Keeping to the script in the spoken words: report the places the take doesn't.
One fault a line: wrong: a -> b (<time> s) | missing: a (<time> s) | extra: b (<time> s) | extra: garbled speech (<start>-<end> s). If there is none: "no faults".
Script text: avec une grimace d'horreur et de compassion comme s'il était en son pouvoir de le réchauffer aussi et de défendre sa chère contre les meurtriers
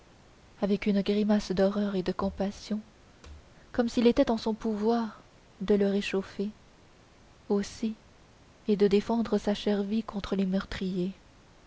extra: vie (9.8 s)